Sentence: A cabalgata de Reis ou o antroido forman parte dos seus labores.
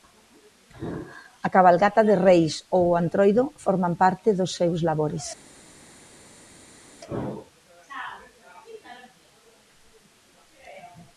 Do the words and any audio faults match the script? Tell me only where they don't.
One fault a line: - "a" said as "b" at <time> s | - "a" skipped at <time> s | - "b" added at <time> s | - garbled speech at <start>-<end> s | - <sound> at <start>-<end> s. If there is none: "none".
none